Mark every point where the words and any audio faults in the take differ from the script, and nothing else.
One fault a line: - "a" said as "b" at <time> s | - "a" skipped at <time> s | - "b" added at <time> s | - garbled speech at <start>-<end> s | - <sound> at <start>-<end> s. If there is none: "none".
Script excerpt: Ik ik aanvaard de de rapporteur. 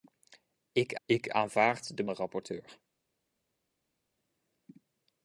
none